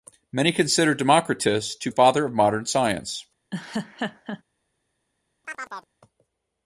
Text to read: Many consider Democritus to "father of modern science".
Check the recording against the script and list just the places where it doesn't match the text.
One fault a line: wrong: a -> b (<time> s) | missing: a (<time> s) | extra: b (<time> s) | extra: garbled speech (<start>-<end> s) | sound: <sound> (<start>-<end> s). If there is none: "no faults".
sound: laugh (3.5-4.4 s)
sound: chirp (5.4-5.9 s)